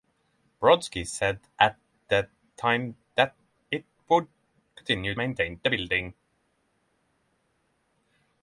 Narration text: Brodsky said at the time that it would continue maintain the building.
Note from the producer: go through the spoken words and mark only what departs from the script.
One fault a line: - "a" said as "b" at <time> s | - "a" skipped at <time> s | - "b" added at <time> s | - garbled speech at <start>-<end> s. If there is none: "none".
none